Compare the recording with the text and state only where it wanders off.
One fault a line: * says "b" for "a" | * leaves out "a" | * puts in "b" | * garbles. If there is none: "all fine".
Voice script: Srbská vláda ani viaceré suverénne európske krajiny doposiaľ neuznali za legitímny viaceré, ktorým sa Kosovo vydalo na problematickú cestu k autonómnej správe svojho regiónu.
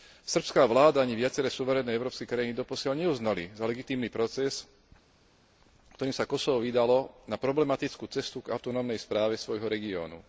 * says "proces" for "viaceré"